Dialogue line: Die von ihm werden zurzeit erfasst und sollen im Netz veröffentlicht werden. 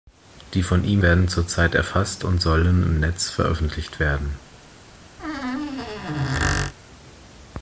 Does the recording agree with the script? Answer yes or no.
yes